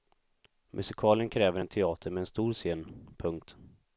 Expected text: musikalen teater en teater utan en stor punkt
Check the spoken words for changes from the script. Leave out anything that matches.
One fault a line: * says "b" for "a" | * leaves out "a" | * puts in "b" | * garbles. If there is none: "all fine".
* says "kräver" for "teater"
* says "med" for "utan"
* puts in "scen"